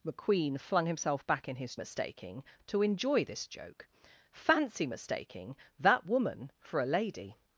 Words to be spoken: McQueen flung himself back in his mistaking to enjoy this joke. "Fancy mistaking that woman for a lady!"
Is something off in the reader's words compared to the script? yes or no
no